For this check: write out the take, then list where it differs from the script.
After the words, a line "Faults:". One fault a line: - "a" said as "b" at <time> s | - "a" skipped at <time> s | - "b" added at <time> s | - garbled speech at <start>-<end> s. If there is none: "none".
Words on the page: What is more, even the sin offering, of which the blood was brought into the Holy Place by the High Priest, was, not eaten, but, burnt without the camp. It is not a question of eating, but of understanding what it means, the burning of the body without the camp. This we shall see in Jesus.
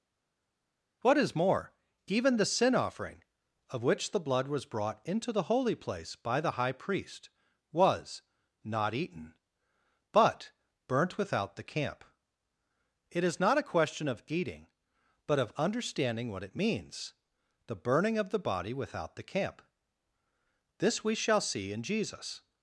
What is more, even the sin offering, of which the blood was brought into the Holy Place by the High Priest, was, not eaten, but, burnt without the camp. It is not a question of eating, but of understanding what it means, the burning of the body without the camp. This we shall see in Jesus.
Faults:
none